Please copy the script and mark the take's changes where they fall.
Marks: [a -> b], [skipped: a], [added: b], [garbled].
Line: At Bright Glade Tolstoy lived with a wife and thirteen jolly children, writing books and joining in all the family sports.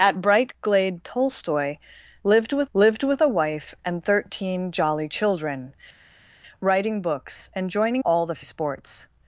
At Bright Glade Tolstoy lived with [added: lived with] a wife and thirteen jolly children, writing books and joining [skipped: in] all the [skipped: family] sports.